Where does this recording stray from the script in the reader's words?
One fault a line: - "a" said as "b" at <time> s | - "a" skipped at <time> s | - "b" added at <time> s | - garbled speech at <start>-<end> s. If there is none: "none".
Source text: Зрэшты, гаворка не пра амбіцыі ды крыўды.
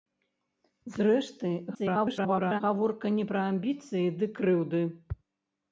- garbled speech at 1.7-2.6 s